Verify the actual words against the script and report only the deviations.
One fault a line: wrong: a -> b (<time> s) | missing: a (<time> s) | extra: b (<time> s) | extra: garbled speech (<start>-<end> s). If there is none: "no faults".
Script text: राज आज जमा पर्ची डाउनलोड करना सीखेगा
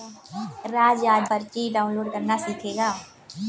missing: जमा (1.3 s)